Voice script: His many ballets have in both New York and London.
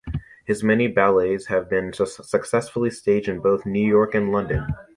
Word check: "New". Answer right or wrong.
right